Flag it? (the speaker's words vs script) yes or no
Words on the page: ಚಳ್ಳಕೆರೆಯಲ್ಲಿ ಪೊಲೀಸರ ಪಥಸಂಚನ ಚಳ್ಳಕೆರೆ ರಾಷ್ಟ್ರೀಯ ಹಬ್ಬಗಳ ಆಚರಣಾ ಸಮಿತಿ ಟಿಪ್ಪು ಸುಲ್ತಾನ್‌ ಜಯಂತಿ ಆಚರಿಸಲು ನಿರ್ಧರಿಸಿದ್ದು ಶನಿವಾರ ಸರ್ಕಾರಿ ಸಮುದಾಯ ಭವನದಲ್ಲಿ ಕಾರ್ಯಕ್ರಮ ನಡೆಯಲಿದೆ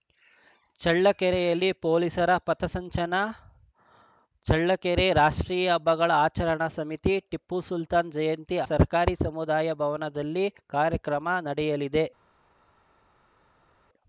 yes